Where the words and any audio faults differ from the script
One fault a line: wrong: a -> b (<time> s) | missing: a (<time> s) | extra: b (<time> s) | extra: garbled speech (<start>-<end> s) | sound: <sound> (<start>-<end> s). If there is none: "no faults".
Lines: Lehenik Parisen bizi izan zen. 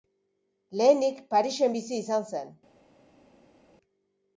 no faults